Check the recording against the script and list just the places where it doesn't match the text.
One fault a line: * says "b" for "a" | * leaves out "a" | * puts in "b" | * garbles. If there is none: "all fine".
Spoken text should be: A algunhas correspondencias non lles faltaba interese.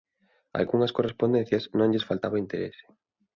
all fine